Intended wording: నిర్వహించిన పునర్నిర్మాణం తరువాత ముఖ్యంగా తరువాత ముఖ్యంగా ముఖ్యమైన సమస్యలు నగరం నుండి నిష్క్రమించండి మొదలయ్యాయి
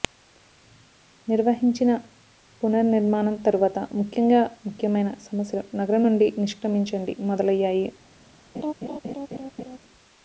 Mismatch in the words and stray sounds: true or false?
true